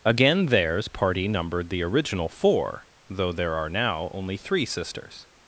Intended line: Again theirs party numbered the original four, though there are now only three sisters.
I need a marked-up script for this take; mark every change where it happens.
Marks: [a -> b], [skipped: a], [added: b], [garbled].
Again theirs party numbered the original four, though there are now only three sisters.